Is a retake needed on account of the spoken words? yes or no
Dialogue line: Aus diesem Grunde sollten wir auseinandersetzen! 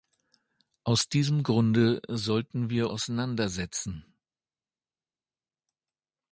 no